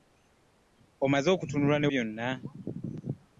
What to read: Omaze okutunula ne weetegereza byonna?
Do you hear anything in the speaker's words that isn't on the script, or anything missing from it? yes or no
yes